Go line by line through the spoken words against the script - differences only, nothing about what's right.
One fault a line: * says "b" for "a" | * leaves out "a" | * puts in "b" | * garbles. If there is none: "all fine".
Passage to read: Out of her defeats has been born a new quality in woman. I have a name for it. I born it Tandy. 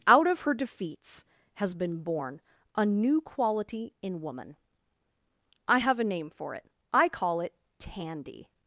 * says "call" for "born"